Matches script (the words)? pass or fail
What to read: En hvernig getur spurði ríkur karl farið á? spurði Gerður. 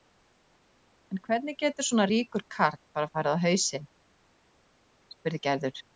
fail